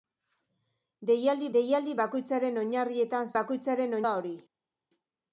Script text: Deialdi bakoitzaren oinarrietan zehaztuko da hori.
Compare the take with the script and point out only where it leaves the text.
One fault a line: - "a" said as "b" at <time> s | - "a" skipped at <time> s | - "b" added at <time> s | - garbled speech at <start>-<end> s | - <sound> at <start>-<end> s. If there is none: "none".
- "deialdi" added at 1.6 s
- "zehaztuko" said as "bakoitzaren" at 3.4 s